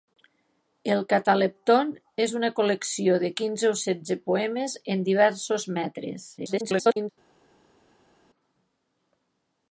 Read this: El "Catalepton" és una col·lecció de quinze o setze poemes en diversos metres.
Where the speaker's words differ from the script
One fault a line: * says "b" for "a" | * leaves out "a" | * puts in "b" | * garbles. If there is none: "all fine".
* garbles